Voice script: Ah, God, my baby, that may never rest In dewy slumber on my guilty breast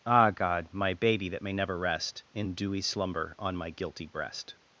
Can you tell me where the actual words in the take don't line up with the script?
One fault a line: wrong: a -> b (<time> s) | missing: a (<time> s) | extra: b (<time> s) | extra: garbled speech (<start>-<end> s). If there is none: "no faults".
no faults